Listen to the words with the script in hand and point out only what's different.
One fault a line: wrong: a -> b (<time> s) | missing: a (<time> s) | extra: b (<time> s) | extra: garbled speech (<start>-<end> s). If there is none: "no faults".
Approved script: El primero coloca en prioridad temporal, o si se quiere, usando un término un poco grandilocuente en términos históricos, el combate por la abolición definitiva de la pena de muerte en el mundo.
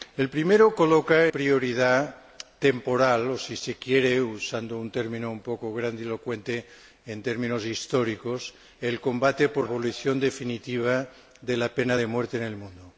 missing: en (1.3 s)
missing: la (9.7 s)